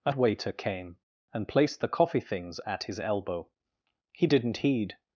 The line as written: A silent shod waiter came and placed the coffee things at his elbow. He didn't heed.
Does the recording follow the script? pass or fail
fail